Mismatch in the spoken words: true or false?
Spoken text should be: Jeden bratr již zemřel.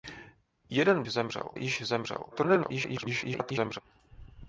true